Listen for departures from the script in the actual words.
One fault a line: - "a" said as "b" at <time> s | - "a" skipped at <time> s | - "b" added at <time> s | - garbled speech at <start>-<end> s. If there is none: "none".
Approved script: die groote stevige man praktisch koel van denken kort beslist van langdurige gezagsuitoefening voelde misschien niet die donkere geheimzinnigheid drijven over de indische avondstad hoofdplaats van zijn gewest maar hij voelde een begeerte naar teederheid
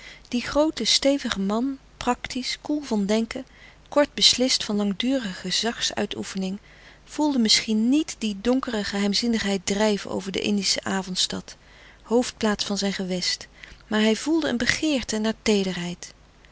none